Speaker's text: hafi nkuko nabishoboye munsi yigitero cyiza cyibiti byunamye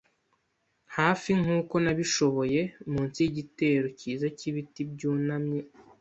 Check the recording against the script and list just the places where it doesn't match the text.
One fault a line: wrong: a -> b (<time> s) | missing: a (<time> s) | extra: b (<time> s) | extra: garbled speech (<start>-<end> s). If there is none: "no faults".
no faults